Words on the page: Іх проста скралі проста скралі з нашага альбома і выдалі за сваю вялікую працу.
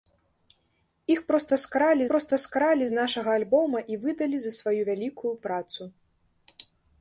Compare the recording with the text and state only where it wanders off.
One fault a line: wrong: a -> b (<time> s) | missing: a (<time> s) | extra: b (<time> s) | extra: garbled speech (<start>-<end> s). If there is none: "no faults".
no faults